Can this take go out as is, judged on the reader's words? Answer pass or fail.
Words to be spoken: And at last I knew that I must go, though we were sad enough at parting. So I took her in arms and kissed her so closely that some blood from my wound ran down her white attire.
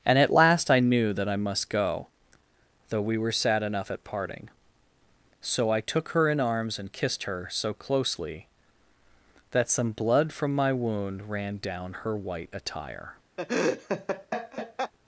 pass